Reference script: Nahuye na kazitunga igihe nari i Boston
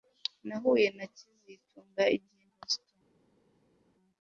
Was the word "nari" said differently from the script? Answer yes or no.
yes